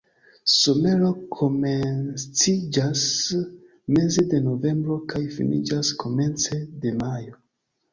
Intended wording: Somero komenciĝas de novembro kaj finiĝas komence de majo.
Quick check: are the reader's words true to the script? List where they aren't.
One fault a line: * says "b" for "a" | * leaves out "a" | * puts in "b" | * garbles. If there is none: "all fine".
* puts in "meze"